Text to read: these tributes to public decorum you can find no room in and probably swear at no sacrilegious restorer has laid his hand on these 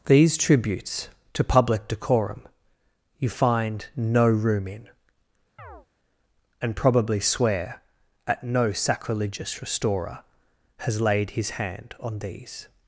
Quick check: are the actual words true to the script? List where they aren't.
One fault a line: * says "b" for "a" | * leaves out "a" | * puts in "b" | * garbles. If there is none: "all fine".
* leaves out "can"